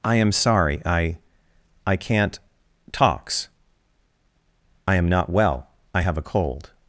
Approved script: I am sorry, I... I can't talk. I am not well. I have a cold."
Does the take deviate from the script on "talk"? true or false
true